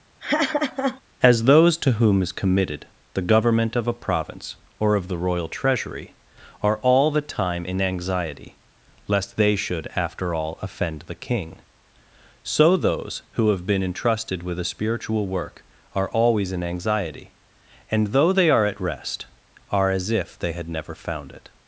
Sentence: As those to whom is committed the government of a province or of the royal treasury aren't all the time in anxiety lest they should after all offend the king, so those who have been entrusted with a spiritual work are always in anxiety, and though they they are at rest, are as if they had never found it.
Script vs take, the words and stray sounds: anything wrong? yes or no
yes